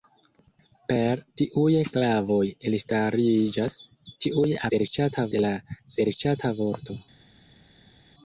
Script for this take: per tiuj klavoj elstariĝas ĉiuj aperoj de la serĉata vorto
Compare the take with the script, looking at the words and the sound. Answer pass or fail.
fail